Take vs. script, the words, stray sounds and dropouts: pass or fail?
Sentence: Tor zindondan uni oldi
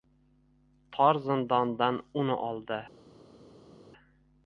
pass